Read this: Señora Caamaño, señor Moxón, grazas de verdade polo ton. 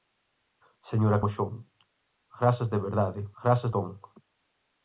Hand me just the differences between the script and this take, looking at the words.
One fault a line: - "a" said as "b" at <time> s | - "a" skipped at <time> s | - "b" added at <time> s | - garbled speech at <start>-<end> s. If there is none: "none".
- "Caamaño señor" skipped at 1.2 s
- "polo" said as "grazas" at 3.4 s